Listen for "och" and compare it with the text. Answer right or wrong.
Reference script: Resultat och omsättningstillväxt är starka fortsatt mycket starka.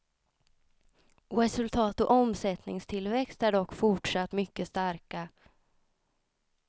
right